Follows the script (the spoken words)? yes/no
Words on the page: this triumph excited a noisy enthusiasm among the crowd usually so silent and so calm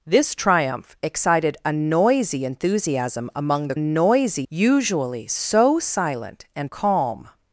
no